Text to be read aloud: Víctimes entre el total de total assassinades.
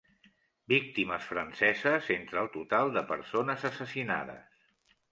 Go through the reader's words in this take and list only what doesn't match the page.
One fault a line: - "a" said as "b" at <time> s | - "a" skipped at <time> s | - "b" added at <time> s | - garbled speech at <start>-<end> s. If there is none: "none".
- "franceses" added at 1.3 s
- "total" said as "persones" at 3.1 s